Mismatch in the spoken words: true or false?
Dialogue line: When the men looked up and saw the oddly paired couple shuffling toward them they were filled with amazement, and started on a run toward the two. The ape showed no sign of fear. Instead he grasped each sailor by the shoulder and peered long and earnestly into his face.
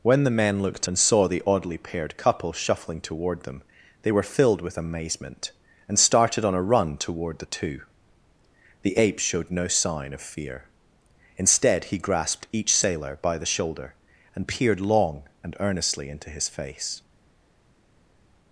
true